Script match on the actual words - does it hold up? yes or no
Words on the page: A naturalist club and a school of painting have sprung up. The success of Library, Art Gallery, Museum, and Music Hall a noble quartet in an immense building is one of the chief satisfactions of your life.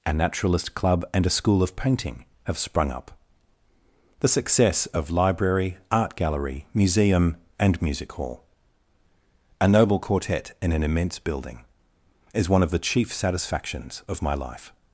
no